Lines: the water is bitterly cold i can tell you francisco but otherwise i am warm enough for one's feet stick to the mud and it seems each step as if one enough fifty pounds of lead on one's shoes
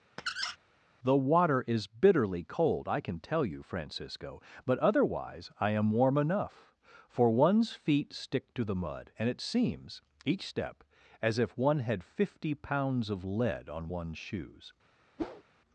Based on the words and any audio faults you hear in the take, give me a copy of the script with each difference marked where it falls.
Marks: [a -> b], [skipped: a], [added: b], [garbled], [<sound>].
[squeak] the water is bitterly cold i can tell you francisco but otherwise i am warm enough for one's feet stick to the mud and it seems each step as if one [enough -> had] fifty pounds of lead on one's shoes [whoosh]